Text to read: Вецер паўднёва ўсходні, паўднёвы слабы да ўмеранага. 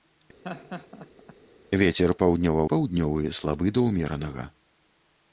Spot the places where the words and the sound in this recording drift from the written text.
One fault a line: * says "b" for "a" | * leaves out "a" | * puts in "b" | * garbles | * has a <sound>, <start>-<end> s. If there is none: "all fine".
* has a laugh, 0.4-1.3 s
* leaves out "ўсходні"